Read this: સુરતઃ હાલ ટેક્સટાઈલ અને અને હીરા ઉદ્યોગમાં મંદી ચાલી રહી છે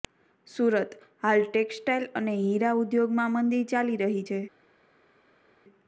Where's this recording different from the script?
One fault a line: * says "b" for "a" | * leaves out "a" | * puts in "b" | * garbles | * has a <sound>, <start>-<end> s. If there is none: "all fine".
* leaves out "અને"